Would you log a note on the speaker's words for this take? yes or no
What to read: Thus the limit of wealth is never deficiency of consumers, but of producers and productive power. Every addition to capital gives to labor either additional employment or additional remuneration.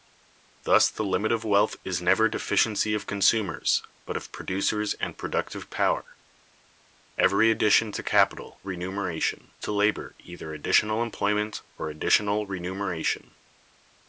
yes